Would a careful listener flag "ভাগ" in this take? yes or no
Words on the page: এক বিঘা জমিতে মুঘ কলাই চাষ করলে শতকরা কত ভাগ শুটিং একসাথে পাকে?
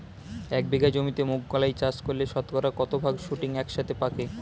no